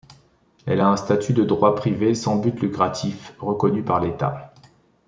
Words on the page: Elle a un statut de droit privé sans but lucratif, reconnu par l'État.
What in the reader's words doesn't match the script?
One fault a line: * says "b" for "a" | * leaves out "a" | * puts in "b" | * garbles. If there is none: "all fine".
all fine